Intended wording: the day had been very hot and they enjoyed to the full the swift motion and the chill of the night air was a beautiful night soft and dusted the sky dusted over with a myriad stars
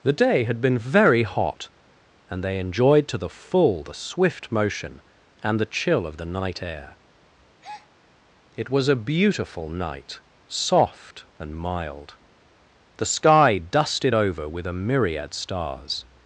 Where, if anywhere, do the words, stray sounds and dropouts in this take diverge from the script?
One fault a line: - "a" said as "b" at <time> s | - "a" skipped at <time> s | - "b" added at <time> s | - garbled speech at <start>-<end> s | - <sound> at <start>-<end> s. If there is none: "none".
- breath at 7.6-7.9 s
- "it" added at 8.5 s
- "dusted" said as "mild" at 11.5 s